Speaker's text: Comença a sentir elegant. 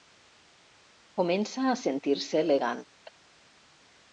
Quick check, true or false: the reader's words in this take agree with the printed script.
false